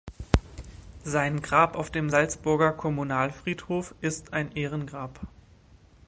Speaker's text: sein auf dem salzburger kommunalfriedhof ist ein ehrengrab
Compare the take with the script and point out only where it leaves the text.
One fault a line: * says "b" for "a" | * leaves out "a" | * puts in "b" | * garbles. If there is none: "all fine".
* puts in "grab"